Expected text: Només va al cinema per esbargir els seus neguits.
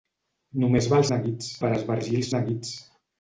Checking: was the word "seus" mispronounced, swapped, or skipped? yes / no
yes